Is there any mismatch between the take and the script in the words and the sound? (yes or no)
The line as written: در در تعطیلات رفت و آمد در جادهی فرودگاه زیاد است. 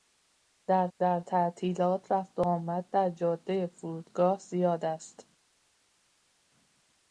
no